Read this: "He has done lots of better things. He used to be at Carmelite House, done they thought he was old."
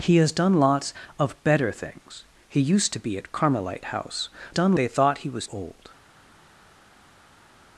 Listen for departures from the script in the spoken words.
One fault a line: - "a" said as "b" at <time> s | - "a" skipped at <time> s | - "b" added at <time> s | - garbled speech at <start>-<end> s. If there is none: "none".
none